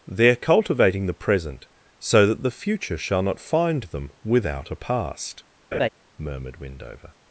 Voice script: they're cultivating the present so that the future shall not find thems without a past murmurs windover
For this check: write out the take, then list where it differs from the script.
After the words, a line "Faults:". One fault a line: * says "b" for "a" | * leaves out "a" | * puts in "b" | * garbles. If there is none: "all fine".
they're cultivating the present so that the future shall not find them without a past murmured windover
Faults:
* says "them" for "thems"
* says "murmured" for "murmurs"